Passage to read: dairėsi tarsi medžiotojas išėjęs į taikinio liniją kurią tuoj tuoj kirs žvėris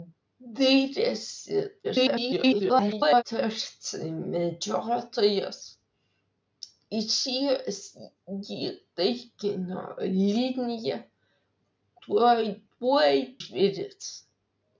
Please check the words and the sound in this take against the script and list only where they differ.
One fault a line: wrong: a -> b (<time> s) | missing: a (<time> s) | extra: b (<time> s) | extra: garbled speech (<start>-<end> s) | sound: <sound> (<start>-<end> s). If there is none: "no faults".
extra: garbled speech (1.8-3.2 s)
missing: kurią (11.0 s)
missing: kirs (13.1 s)